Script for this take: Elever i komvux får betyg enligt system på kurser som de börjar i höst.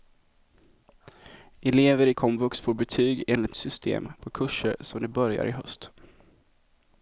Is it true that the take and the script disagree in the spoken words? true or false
false